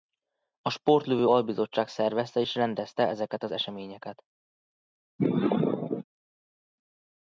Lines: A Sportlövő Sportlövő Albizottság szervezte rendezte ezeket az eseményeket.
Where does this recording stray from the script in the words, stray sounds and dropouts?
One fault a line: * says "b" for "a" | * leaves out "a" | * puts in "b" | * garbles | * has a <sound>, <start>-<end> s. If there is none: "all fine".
* leaves out "Sportlövő"
* puts in "és"
* has a sneeze, 5.2-6.0 s